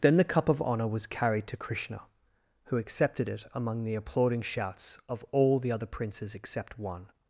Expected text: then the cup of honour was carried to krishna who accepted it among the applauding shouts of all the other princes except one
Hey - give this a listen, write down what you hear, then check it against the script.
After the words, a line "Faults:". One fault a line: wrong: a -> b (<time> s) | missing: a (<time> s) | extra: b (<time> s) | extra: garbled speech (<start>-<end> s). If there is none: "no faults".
then the cup of honour was carried to krishna who accepted it among the applauding shouts of all the other princes except one
Faults:
no faults